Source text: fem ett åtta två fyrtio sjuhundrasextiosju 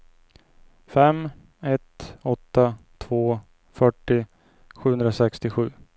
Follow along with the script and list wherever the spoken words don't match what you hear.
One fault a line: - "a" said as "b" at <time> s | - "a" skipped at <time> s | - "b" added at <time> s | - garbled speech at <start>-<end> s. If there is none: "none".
none